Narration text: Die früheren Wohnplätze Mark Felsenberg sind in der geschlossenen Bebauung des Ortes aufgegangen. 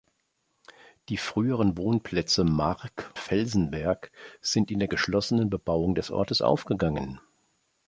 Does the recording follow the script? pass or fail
pass